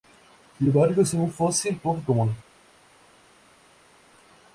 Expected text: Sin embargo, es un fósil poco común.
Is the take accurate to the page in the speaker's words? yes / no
yes